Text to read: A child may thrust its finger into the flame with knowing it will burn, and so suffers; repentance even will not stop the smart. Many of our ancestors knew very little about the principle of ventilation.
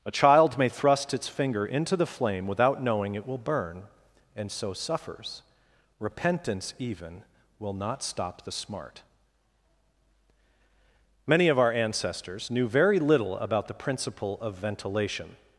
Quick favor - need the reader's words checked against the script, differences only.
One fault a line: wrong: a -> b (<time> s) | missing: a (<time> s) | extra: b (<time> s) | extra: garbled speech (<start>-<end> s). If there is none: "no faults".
wrong: with -> without (2.5 s)